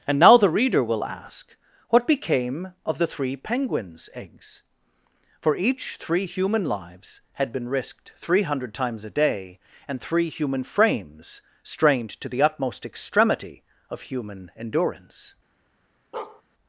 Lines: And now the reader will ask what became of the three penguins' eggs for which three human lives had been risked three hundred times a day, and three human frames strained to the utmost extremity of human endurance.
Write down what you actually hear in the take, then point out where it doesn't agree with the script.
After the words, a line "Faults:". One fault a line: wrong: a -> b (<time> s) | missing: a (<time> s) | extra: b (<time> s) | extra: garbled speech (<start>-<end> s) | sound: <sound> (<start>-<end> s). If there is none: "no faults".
And now the reader will ask what became of the three penguins' eggs for each three human lives had been risked three hundred times a day, and three human frames strained to the utmost extremity of human endurance.
Faults:
wrong: which -> each (5.5 s)
sound: bark (16.1-16.4 s)